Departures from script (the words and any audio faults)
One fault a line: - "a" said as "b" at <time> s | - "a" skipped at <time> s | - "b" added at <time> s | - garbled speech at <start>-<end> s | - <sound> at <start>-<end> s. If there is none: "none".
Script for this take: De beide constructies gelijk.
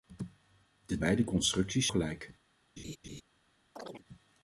- laugh at 2.8-3.2 s
- chirp at 3.8-4.0 s